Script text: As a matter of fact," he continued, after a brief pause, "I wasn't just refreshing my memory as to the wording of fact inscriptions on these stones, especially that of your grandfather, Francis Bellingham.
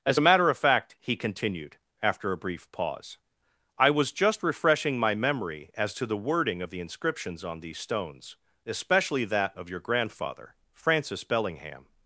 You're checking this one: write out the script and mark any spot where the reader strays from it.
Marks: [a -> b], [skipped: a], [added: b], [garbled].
As a matter of fact," he continued, after a brief pause, "I [wasn't -> was] just refreshing my memory as to the wording of [fact -> the] inscriptions on these stones, especially that of your grandfather, Francis Bellingham.